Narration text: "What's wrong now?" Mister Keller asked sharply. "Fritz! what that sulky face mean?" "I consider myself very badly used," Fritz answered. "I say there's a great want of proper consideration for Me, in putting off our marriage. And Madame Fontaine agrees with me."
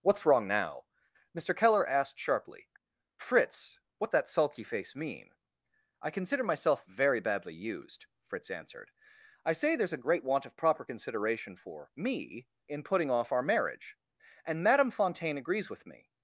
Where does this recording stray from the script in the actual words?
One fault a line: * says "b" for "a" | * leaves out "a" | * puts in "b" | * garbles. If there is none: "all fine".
all fine